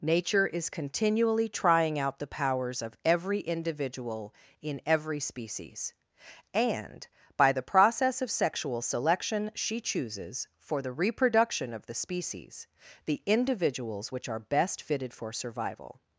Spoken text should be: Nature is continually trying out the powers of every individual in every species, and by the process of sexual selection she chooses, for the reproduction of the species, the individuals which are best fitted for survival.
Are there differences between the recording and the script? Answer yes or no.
no